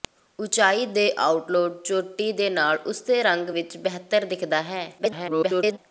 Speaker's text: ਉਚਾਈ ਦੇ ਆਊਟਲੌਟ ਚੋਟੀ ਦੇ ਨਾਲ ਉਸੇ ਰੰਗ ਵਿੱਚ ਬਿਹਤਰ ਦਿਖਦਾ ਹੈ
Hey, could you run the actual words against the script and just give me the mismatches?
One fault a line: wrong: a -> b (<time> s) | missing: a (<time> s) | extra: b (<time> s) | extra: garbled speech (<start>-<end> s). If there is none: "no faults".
extra: garbled speech (5.0-5.8 s)